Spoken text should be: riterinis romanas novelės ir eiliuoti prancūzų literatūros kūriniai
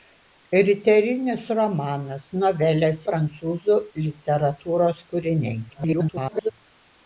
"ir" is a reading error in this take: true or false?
true